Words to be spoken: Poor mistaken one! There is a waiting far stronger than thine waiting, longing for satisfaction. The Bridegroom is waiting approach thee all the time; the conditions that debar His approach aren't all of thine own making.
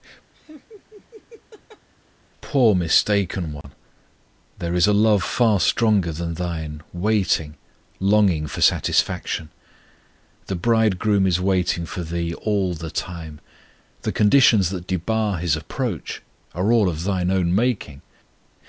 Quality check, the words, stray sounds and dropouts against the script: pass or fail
fail